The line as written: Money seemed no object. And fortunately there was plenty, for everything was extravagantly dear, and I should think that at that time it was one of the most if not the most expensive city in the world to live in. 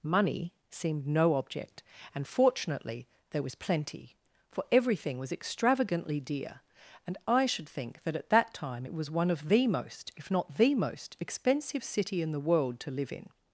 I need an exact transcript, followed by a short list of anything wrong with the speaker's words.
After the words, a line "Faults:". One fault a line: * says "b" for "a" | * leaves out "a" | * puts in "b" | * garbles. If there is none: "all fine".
Money seemed no object. And fortunately there was plenty, for everything was extravagantly dear, and I should think that at that time it was one of the most if not the most expensive city in the world to live in.
Faults:
all fine